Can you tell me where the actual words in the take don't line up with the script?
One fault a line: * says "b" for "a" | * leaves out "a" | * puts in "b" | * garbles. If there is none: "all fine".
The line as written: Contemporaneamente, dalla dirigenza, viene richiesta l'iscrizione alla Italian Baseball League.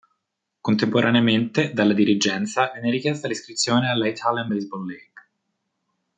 all fine